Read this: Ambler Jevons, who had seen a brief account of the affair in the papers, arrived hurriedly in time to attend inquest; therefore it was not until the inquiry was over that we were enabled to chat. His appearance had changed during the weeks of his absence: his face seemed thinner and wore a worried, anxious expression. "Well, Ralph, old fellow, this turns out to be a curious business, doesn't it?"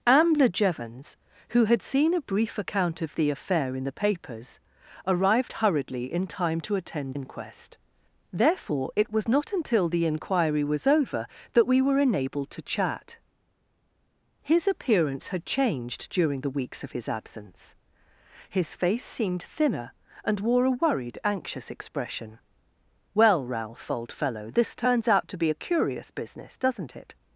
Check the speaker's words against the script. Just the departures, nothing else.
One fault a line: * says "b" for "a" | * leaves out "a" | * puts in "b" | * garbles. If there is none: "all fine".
all fine